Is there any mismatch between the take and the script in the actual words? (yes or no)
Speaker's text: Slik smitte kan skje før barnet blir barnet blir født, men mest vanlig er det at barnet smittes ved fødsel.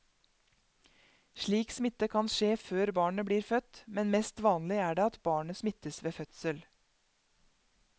yes